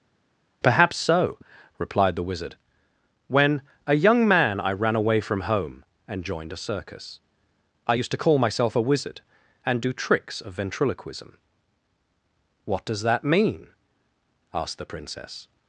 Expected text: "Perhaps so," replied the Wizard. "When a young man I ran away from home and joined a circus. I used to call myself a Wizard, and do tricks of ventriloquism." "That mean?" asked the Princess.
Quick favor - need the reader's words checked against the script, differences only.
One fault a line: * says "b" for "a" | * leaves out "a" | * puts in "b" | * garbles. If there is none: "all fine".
* puts in "What does"